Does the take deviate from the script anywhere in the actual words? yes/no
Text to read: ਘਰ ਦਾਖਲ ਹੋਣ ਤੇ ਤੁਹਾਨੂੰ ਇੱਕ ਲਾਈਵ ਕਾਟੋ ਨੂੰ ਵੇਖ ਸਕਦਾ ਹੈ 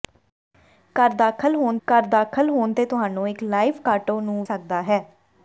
yes